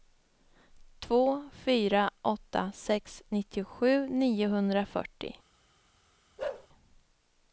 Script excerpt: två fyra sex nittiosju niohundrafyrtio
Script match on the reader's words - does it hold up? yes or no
no